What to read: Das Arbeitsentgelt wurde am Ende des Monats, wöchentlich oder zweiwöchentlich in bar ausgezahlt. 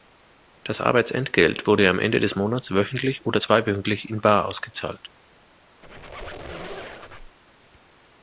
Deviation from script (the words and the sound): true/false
true